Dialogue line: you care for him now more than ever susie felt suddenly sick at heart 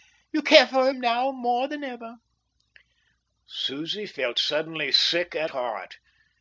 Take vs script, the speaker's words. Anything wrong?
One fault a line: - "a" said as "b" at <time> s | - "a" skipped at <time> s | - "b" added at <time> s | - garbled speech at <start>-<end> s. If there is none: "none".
none